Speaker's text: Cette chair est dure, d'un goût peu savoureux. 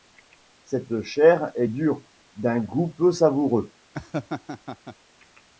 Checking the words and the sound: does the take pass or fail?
fail